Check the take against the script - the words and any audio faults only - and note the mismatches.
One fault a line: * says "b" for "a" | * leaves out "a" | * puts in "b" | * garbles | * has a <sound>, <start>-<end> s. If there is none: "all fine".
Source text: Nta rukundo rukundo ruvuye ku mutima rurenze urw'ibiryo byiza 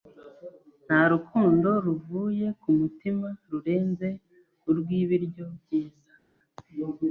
* leaves out "rukundo"